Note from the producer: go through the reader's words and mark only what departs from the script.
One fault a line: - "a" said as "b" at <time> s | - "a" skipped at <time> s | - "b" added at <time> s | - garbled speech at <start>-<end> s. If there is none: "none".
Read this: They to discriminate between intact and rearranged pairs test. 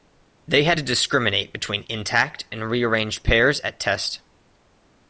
- "had" added at 0.6 s
- "at" added at 3.6 s